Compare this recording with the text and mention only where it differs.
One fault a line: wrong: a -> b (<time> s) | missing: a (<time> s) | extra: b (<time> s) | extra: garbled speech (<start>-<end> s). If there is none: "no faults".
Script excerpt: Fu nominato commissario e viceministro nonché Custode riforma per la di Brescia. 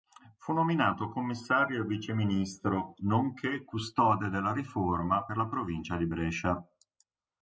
extra: della (4.3 s)
extra: provincia (5.5 s)